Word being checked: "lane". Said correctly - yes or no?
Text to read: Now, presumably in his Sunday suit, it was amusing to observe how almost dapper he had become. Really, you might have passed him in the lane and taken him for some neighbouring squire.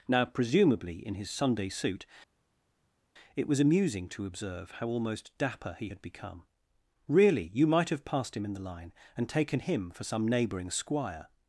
no